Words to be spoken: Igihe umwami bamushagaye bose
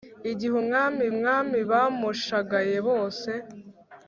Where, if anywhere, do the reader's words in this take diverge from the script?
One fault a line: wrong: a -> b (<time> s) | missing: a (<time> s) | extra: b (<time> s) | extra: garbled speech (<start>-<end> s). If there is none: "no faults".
extra: umwami (1.1 s)